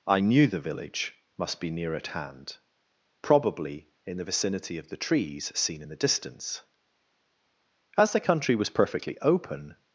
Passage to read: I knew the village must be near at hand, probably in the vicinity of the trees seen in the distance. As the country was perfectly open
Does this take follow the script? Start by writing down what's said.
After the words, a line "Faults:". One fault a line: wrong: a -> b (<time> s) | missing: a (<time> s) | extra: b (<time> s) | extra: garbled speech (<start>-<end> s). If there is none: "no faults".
I knew the village must be near at hand, probably in the vicinity of the trees seen in the distance. As the country was perfectly open
Faults:
no faults